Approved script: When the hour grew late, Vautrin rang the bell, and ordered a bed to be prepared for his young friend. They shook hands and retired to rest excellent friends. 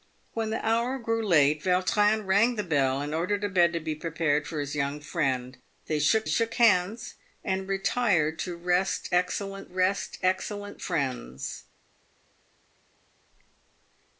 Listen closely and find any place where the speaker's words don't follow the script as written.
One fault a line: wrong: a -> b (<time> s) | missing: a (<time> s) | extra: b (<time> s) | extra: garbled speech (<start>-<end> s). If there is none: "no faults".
extra: shook (6.3 s)
extra: rest excellent (9.7 s)